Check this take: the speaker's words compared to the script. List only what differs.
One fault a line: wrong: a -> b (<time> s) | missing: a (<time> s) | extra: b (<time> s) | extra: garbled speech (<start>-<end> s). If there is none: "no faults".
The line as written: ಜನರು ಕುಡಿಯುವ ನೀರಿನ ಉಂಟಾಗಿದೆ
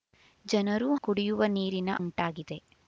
no faults